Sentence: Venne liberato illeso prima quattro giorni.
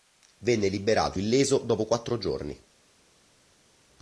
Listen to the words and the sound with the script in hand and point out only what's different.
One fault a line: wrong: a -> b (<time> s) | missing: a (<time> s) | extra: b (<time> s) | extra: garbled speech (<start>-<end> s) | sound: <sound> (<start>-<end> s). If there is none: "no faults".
wrong: prima -> dopo (1.6 s)